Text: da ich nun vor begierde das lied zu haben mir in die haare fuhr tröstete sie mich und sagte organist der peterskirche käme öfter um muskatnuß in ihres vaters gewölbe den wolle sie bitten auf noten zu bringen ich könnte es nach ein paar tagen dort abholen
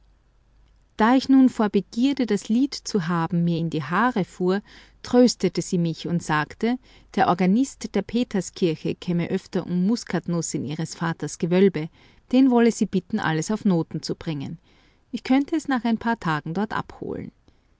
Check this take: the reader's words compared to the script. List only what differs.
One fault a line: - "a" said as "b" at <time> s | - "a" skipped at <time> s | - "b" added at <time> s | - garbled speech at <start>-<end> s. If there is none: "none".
- "der" added at 7.2 s
- "alles" added at 13.2 s